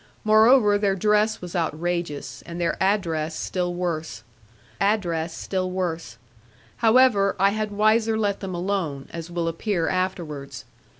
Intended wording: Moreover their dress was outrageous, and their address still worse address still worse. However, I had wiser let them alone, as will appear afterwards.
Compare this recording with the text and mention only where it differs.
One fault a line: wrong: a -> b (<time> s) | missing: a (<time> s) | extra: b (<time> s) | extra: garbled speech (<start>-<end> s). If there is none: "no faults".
no faults